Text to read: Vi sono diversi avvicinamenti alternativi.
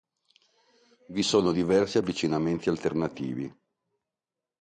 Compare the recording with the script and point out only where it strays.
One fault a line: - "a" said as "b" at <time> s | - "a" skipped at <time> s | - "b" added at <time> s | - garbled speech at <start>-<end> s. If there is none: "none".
none